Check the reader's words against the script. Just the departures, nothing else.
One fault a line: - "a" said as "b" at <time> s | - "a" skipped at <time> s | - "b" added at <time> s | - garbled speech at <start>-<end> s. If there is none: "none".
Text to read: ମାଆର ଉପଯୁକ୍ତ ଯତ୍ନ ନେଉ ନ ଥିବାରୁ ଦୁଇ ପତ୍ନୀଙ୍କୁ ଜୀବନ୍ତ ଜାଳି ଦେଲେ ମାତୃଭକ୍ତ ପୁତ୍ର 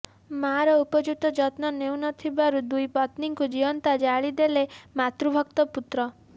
none